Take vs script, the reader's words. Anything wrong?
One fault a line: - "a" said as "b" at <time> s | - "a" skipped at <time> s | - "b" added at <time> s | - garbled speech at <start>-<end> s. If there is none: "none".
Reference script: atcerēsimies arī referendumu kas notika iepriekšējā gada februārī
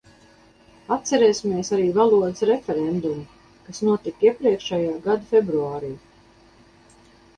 - "valodas" added at 2.0 s